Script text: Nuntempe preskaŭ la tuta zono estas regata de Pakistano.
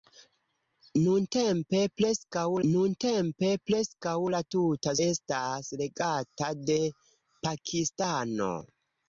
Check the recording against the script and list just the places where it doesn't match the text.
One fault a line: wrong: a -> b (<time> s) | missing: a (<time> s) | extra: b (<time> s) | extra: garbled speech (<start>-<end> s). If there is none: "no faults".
extra: nuntempe preskaŭ (2.7 s)
missing: zono (5.0 s)